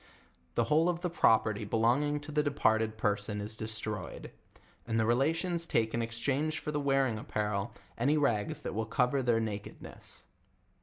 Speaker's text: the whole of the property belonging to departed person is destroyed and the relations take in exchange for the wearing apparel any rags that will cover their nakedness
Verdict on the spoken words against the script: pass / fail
fail